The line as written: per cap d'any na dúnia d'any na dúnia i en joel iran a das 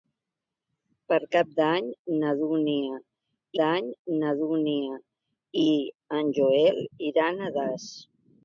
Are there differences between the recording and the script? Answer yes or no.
no